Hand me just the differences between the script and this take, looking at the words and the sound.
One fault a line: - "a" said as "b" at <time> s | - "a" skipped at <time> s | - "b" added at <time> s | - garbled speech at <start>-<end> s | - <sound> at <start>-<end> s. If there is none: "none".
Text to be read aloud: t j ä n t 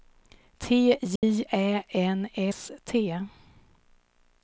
- dropout at 1.2-1.2 s
- "s" added at 2.5 s